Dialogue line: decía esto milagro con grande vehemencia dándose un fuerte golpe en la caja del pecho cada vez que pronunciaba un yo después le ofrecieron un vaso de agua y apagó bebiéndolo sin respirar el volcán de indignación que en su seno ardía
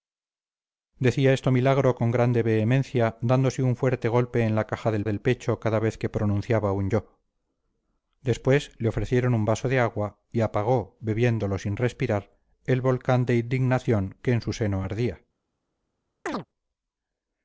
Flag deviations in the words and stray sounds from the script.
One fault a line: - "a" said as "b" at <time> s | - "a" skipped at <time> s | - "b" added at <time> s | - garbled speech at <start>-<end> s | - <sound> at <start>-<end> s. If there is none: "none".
- "del" added at 5.0 s
- chirp at 16.3-16.5 s